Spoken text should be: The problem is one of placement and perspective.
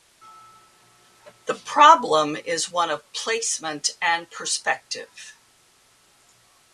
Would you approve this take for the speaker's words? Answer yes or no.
yes